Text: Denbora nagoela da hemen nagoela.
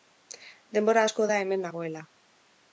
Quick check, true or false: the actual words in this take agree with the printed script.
false